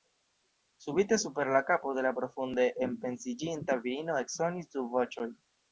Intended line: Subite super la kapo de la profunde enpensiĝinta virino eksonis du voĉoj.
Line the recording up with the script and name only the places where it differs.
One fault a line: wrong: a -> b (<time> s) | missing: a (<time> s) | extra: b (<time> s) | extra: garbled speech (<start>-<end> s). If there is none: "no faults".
no faults